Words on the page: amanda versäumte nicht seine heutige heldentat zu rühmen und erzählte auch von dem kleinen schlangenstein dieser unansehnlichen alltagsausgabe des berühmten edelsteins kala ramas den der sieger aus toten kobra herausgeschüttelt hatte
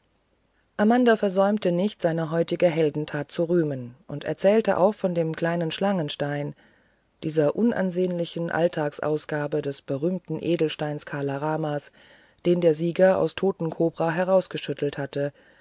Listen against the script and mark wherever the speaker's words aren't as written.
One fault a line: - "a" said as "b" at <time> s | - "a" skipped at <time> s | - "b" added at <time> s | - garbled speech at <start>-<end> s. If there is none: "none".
none